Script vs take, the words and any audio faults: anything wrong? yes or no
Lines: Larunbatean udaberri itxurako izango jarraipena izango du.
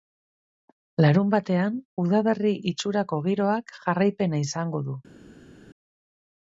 yes